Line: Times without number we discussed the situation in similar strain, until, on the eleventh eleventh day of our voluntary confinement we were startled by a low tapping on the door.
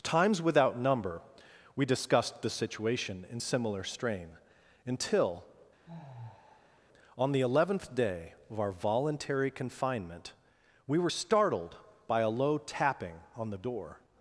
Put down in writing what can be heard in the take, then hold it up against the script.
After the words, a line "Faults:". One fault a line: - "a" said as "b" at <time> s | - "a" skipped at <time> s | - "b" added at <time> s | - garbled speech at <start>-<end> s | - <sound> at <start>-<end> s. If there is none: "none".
Times without number we discussed the situation in similar strain, until, on the eleventh day of our voluntary confinement we were startled by a low tapping on the door.
Faults:
- sigh at 5.9-6.8 s
- "eleventh" skipped at 7.9 s